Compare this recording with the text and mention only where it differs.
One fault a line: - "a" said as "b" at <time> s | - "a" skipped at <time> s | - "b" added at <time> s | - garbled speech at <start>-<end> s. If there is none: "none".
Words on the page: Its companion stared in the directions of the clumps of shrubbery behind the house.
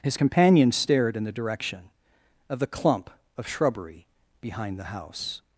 - "Its" said as "His" at 0.0 s
- "directions" said as "direction" at 1.3 s
- "clumps" said as "clump" at 2.7 s